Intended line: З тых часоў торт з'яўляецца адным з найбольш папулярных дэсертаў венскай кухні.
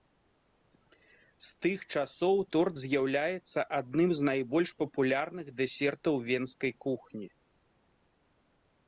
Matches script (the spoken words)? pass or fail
pass